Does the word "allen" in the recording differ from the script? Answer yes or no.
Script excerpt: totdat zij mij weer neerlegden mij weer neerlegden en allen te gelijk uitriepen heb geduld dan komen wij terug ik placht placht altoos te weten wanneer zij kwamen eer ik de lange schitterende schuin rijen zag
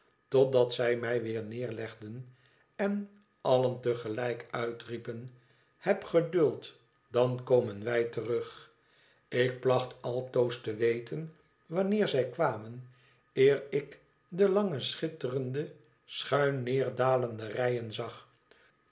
no